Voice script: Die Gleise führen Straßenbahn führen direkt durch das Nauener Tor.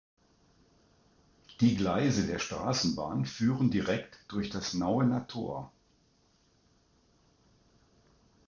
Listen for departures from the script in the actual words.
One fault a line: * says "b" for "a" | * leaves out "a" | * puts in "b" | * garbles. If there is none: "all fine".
* says "der" for "führen"